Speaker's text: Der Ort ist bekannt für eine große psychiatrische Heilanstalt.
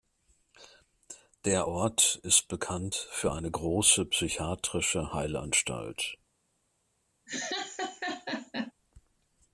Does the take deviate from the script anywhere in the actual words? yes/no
no